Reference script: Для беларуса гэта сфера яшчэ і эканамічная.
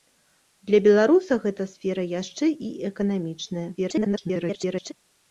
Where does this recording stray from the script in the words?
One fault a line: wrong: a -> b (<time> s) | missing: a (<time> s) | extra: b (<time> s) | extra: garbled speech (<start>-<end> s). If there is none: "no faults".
extra: garbled speech (3.8-4.9 s)